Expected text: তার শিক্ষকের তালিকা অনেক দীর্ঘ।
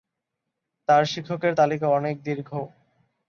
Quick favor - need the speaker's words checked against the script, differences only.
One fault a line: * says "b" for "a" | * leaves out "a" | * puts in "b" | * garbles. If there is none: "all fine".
all fine